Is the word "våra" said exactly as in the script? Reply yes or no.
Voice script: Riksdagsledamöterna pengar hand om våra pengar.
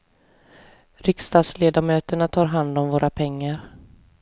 yes